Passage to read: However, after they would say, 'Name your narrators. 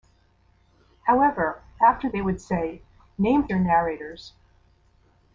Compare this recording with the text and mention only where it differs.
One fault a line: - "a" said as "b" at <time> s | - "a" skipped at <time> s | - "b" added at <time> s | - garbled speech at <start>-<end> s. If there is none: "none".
none